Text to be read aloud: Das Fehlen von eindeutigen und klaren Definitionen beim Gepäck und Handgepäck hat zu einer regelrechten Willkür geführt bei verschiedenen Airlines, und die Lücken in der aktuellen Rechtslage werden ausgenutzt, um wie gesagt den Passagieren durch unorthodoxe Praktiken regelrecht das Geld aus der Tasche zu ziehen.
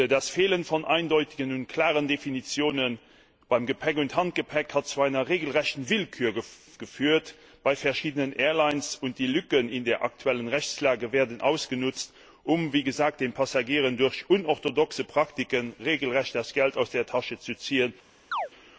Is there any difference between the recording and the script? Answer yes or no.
no